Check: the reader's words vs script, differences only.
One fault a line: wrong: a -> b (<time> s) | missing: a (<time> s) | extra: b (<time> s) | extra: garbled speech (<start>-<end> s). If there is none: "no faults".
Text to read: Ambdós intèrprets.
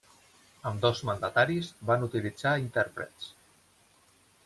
extra: mandataris van utilitzar (1.1 s)